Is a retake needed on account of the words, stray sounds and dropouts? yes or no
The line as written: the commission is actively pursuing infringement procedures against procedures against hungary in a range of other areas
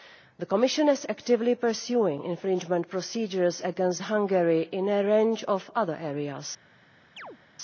yes